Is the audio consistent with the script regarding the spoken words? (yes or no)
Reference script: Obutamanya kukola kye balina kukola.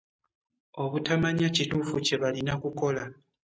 no